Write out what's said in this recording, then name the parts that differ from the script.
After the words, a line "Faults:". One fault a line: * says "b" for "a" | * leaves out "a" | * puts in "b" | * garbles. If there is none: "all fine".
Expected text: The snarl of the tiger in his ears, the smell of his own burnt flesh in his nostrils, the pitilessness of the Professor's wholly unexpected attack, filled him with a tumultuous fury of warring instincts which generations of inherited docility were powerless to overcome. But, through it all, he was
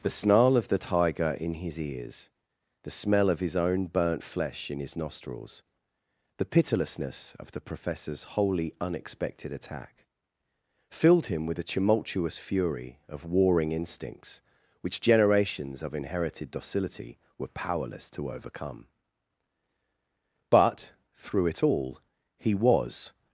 The snarl of the tiger in his ears, the smell of his own burnt flesh in his nostrils, the pitilessness of the Professor's wholly unexpected attack, filled him with a tumultuous fury of warring instincts which generations of inherited docility were powerless to overcome. But, through it all, he was
Faults:
all fine